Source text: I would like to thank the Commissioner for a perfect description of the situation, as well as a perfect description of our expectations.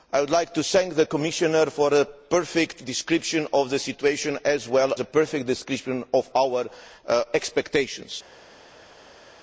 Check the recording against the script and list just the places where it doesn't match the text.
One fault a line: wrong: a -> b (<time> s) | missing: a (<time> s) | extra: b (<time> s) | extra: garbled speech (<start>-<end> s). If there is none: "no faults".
missing: as (4.9 s)